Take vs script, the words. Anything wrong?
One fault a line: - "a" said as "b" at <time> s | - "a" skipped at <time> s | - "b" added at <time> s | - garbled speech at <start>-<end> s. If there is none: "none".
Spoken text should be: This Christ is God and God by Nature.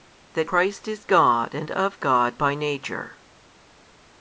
- "This" said as "That" at 0.3 s
- "of" added at 1.7 s